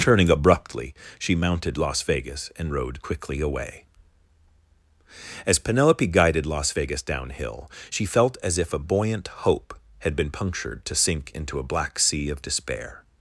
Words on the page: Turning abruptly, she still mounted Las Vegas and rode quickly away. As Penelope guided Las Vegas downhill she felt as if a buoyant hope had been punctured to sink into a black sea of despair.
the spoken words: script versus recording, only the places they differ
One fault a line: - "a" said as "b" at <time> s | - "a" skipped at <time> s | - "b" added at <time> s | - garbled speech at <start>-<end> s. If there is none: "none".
- "still" skipped at 1.4 s